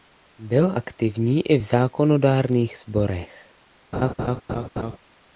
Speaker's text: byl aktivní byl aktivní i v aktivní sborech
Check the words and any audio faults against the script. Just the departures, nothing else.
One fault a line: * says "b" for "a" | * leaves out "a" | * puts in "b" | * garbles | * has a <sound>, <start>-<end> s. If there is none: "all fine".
* leaves out "byl aktivní"
* says "zákonodárných" for "aktivní"
* has a laugh, 3.9-5.0 s